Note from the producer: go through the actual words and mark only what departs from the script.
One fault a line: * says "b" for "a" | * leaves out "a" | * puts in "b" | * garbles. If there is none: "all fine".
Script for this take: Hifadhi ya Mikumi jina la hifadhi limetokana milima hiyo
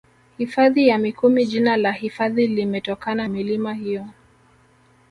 all fine